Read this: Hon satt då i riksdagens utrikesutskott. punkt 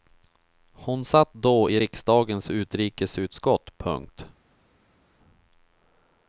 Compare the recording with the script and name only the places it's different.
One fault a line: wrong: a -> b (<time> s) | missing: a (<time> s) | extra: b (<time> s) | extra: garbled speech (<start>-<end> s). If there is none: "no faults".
no faults